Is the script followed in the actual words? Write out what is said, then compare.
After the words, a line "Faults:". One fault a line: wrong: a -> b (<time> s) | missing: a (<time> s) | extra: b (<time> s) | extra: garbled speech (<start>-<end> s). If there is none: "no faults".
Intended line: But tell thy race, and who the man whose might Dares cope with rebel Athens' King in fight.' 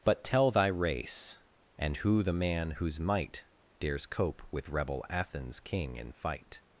But tell thy race, and who the man whose might Dares cope with rebel Athens' King in fight.'
Faults:
no faults